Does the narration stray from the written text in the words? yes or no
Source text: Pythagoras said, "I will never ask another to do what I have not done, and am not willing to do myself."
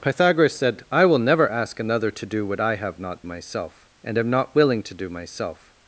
yes